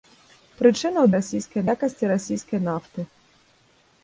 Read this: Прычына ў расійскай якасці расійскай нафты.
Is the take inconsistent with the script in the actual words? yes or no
no